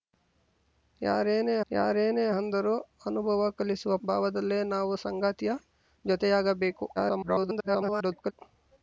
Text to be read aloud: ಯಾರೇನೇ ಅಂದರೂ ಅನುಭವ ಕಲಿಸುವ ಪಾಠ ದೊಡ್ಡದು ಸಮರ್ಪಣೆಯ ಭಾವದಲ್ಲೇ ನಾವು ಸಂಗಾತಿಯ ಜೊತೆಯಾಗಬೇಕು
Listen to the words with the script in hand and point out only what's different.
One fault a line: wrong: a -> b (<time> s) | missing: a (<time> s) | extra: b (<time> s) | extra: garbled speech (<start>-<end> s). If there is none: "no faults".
extra: ಯಾರೇನೇ (1.7 s)
missing: ಪಾಠ ದೊಡ್ಡದು ಸಮರ್ಪಣೆಯ (3.9 s)
extra: garbled speech (7.0-8.3 s)